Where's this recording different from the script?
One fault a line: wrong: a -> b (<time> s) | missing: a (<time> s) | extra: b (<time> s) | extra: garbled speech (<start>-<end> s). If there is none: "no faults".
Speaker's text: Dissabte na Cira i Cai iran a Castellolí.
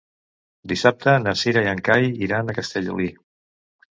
extra: en (1.7 s)